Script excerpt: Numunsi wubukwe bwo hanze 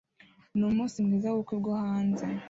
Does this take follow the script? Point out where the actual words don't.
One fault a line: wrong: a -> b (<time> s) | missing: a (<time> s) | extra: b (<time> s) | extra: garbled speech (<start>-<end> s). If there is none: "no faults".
extra: mwiza (1.1 s)